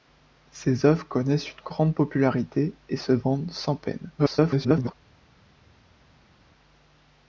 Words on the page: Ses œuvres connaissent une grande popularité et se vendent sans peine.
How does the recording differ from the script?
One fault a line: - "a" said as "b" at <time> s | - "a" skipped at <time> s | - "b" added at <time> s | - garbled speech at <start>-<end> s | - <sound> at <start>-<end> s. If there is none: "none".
- garbled speech at 4.2-4.9 s